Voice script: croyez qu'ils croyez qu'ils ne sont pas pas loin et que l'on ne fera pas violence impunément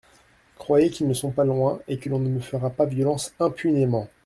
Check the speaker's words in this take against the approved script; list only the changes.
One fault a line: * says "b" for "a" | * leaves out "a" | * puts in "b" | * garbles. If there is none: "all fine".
* leaves out "croyez qu'ils"
* leaves out "pas"
* puts in "me"